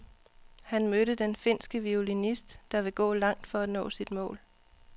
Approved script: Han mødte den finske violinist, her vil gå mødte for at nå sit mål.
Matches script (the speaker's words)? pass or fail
fail